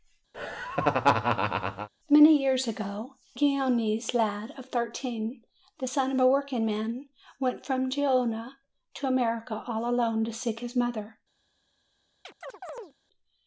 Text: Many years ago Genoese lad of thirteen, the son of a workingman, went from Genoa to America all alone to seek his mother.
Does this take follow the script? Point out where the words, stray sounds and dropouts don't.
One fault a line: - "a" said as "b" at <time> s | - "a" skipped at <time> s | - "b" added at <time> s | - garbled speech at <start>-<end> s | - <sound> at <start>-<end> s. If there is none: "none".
- laugh at 0.3-1.9 s
- chirp at 12.2-12.9 s